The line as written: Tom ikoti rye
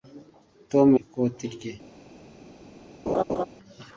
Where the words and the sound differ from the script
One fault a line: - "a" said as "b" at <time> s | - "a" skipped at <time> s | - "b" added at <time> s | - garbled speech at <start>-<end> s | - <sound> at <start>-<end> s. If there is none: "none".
- laugh at 3.1-3.4 s